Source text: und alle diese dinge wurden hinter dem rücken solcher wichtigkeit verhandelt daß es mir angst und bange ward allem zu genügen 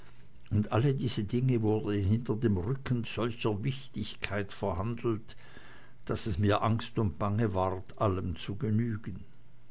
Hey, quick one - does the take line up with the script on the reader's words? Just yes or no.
yes